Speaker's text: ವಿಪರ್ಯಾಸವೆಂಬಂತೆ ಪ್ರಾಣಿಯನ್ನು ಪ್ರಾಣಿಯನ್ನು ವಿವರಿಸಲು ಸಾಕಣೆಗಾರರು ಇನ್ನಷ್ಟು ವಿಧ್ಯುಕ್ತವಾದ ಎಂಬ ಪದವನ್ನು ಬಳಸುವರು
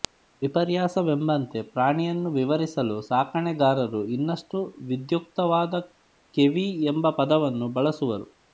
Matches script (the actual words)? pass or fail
fail